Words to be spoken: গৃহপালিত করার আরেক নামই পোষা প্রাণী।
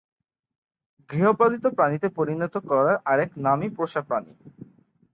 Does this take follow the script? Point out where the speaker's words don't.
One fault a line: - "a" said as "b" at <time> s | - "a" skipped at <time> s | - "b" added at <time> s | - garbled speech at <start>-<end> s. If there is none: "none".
- "প্রাণীতে পরিণত" added at 1.7 s